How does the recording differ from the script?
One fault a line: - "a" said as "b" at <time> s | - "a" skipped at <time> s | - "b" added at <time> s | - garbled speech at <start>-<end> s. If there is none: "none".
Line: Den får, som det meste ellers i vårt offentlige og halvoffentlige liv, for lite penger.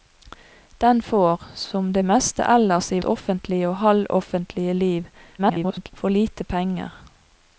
- "vårt" skipped at 3.0 s
- garbled speech at 5.4-5.9 s